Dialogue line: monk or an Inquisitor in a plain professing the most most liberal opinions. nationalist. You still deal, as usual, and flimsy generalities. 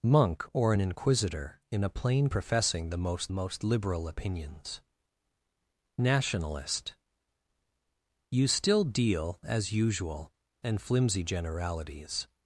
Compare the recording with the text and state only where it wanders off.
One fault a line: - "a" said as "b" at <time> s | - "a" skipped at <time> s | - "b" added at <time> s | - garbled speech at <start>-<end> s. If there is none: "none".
none